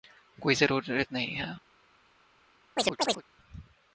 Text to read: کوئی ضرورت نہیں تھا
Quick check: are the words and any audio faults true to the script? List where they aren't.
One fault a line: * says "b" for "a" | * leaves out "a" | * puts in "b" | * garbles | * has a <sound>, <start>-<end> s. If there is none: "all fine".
* says "ہے" for "تھا"
* has a chirp, 2.8-3.2 s